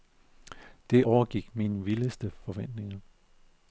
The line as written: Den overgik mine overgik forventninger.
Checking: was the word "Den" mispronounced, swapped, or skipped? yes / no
yes